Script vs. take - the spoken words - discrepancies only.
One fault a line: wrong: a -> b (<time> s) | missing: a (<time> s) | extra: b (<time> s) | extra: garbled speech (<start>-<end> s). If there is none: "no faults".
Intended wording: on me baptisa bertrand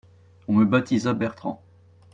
no faults